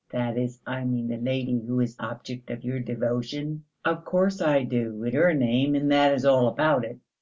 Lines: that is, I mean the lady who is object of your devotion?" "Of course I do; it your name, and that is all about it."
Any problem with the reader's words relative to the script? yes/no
no